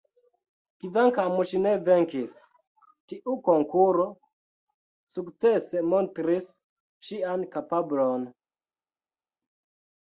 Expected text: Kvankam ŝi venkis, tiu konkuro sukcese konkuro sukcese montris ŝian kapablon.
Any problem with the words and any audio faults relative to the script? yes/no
yes